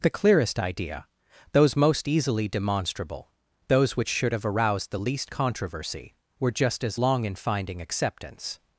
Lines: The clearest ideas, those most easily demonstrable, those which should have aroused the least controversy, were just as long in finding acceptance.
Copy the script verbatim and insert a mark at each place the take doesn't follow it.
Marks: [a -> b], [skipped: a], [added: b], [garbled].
The clearest [ideas, -> idea] those most easily demonstrable, those which should have aroused the least controversy, were just as long in finding acceptance.